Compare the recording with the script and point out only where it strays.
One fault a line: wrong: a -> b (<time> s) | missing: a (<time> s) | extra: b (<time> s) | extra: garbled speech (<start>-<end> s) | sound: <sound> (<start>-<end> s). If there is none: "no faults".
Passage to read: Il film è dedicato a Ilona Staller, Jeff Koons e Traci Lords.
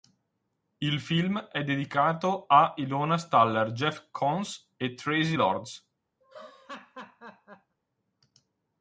sound: laugh (6.2-7.8 s)